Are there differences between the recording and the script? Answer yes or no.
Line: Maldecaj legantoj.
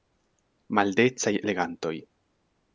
no